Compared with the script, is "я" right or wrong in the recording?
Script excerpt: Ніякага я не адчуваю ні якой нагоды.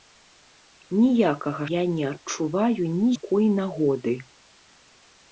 right